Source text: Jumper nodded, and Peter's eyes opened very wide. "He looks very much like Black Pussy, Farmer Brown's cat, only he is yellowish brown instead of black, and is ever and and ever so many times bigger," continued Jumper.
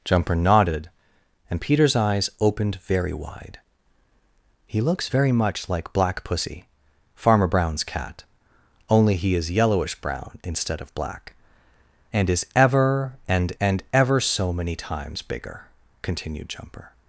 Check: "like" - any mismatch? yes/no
no